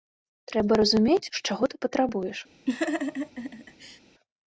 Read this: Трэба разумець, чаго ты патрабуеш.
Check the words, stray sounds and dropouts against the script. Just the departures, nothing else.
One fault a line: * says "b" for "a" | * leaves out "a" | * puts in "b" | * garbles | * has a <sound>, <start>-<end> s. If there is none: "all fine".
* has a laugh, 2.7-4.0 s